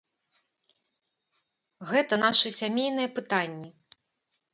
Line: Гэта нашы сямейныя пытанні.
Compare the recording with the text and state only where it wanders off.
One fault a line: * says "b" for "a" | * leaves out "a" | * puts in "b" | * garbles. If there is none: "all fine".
all fine